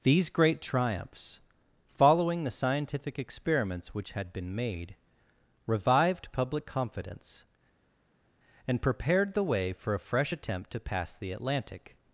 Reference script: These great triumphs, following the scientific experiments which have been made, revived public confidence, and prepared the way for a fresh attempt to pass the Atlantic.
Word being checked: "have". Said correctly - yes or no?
no